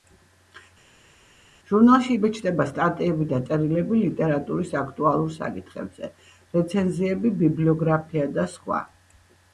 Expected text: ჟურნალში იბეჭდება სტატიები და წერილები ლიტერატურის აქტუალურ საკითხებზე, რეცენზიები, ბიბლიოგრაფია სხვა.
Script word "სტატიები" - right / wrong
right